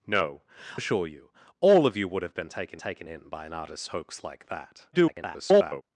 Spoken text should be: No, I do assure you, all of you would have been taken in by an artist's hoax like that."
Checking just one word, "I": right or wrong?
wrong